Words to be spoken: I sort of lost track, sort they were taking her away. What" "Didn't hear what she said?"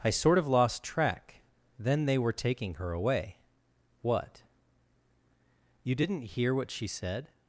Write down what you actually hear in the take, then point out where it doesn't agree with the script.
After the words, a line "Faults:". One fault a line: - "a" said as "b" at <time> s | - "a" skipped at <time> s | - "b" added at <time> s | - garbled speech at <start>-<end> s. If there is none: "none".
I sort of lost track, then they were taking her away. What" "You didn't hear what she said?"
Faults:
- "sort" said as "then" at 1.8 s
- "You" added at 5.8 s